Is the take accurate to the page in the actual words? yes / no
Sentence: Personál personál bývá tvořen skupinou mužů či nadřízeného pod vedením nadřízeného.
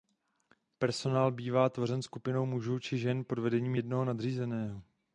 no